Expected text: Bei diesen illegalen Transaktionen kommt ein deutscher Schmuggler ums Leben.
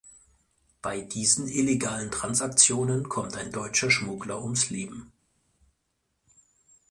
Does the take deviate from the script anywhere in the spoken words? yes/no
no